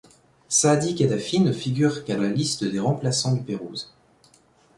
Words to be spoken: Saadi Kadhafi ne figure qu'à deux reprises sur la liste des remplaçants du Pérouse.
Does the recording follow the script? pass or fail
fail